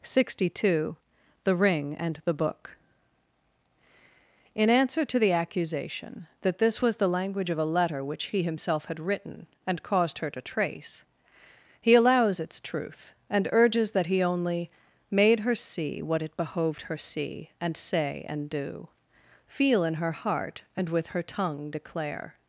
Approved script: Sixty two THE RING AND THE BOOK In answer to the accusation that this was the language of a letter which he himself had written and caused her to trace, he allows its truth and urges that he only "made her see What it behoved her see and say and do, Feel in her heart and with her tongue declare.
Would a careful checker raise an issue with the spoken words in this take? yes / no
no